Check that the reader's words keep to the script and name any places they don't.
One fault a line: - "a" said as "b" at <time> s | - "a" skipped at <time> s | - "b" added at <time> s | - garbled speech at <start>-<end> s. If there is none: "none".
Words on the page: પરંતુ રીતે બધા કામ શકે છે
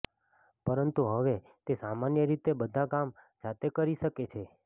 - "હવે તે સામાન્ય" added at 1.1 s
- "જાતે કરી" added at 3.4 s